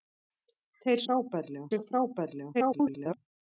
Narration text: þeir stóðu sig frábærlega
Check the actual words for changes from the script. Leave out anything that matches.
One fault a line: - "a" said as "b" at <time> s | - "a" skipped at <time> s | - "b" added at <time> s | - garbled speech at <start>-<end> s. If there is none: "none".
- "stóðu" said as "frábærlega" at 1.1 s
- garbled speech at 2.5-3.2 s